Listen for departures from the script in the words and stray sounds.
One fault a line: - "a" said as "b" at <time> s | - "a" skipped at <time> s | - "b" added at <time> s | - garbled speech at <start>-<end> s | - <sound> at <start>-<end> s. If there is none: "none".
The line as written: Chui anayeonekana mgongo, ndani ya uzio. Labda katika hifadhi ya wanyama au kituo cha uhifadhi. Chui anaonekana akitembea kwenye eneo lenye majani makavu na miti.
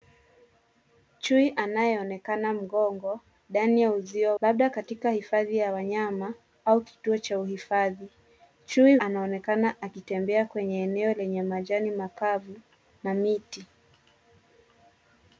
none